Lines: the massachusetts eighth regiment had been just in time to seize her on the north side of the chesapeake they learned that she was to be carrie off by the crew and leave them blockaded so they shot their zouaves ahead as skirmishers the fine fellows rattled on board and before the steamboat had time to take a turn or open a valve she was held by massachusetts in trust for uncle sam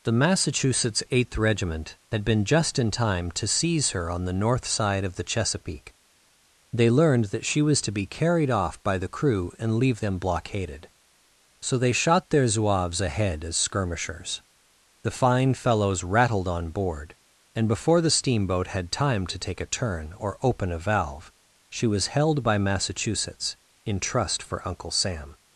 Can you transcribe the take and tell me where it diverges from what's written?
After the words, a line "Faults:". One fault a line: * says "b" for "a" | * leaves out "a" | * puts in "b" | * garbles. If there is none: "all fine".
the massachusetts eighth regiment had been just in time to seize her on the north side of the chesapeake they learned that she was to be carried off by the crew and leave them blockaded so they shot their zouaves ahead as skirmishers the fine fellows rattled on board and before the steamboat had time to take a turn or open a valve she was held by massachusetts in trust for uncle sam
Faults:
* says "carried" for "carrie"